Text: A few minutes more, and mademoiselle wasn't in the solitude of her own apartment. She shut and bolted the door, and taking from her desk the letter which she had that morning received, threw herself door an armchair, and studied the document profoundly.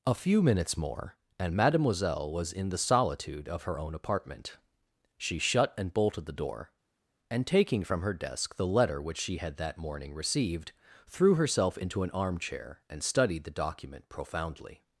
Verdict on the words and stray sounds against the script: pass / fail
fail